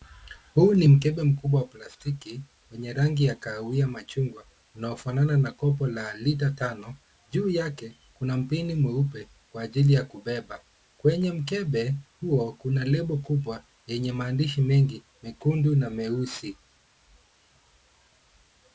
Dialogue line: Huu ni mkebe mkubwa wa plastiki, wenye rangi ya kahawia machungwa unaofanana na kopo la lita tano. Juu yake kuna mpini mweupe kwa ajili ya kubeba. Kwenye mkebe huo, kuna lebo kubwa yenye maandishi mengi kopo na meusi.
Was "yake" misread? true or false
false